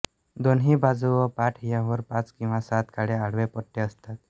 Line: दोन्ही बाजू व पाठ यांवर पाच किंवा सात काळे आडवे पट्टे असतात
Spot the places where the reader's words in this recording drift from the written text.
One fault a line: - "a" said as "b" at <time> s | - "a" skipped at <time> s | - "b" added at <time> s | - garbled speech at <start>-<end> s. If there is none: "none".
none